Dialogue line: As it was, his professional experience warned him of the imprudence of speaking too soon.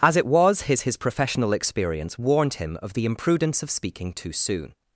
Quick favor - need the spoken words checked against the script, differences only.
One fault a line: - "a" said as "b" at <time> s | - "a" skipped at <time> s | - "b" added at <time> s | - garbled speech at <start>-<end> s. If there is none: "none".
- "his" added at 0.8 s